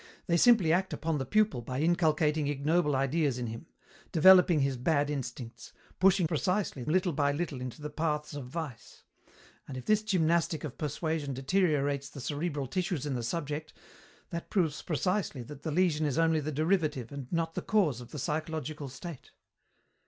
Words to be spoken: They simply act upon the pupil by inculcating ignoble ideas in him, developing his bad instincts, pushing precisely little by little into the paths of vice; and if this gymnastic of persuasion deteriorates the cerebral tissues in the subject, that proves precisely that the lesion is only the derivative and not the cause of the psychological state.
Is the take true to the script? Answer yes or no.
yes